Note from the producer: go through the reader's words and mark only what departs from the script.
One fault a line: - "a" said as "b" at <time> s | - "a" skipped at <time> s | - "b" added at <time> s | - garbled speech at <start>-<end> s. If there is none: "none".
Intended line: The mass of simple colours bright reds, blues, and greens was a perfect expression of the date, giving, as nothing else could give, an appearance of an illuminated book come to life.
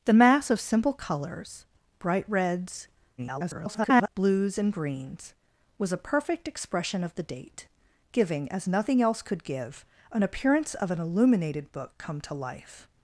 - garbled speech at 3.2-4.1 s